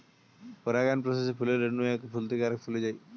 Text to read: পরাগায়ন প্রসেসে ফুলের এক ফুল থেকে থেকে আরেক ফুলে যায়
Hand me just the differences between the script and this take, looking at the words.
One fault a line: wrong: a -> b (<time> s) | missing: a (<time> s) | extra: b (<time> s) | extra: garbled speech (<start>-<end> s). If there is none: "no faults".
extra: রেণু (1.6 s)
missing: থেকে (2.4 s)